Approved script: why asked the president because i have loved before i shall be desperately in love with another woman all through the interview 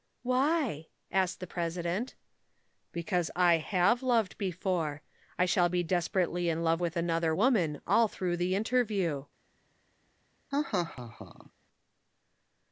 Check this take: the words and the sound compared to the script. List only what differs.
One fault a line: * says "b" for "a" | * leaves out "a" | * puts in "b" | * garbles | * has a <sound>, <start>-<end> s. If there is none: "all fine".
* has a laugh, 10.5-11.5 s